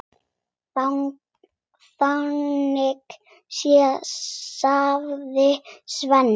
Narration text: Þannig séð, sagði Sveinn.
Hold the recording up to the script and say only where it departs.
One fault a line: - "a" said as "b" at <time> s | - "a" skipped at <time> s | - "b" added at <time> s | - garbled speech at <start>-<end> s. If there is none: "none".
none